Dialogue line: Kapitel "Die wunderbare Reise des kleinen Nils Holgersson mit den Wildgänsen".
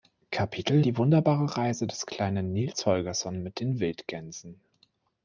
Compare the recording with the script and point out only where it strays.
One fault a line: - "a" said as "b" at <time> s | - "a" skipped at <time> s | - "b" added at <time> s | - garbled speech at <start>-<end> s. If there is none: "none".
none